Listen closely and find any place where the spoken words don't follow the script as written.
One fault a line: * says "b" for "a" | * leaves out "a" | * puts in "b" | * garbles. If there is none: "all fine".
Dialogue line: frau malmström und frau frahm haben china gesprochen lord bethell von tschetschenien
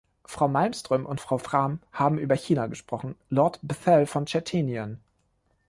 * puts in "über"